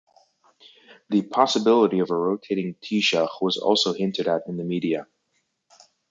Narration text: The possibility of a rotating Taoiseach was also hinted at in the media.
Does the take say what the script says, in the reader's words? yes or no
yes